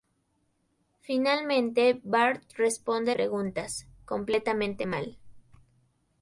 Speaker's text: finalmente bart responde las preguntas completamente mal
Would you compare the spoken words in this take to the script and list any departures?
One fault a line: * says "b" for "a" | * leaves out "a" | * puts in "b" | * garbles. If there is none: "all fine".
* leaves out "las"